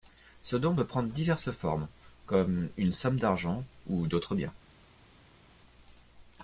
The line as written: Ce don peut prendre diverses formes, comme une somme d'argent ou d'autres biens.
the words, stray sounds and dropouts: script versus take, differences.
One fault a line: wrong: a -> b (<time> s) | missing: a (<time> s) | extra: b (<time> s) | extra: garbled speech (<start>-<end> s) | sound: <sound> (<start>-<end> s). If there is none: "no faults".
no faults